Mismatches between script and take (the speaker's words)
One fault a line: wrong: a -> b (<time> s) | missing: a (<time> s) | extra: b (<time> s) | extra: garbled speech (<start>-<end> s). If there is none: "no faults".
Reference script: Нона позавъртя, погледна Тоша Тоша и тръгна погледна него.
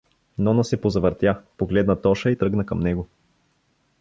extra: се (0.6 s)
missing: Тоша (2.3 s)
wrong: погледна -> към (2.7 s)